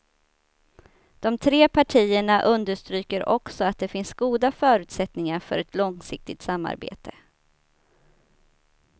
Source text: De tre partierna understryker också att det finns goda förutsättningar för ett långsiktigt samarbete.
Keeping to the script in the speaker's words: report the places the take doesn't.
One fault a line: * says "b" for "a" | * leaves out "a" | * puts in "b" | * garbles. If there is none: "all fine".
all fine